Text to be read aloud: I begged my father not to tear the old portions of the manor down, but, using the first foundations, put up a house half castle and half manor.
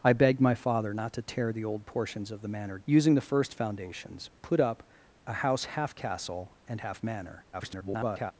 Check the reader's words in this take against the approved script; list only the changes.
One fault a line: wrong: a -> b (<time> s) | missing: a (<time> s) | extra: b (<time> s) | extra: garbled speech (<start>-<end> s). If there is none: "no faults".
missing: down but (2.8 s)
extra: garbled speech (7.5-8.3 s)